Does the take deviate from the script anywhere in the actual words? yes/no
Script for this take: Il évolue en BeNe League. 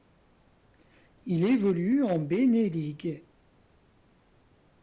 no